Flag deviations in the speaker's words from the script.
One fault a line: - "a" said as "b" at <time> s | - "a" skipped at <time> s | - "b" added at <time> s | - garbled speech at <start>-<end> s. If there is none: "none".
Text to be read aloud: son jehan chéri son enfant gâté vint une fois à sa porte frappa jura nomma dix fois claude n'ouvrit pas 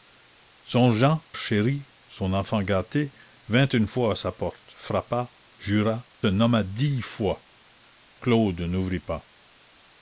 none